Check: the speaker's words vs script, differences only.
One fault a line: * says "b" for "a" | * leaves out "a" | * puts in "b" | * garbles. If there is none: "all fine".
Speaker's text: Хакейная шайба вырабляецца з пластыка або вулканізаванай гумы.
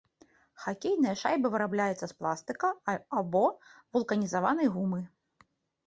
all fine